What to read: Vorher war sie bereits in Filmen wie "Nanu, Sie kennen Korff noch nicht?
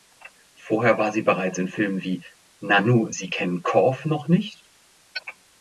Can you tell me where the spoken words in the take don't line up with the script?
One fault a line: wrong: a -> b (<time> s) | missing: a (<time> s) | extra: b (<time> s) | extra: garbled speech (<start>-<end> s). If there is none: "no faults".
no faults